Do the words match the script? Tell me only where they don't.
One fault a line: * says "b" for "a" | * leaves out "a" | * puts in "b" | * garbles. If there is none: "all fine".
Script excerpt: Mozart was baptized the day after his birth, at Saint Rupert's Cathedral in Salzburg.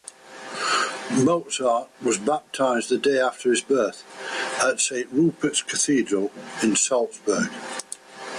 all fine